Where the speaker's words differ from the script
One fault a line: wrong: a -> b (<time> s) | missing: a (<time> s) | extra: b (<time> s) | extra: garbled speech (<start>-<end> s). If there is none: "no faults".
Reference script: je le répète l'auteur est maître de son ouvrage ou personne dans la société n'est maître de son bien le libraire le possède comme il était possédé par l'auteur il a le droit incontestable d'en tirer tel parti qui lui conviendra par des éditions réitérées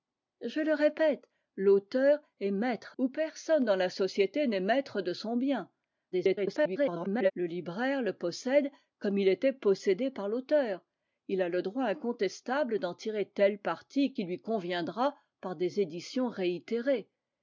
missing: de son ouvrage (3.0 s)
extra: garbled speech (6.1-7.3 s)